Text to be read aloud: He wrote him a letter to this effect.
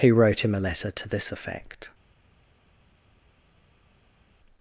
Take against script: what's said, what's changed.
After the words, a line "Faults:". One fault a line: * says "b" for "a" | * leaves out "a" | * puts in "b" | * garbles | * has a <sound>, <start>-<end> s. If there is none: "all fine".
He wrote him a letter to this effect.
Faults:
all fine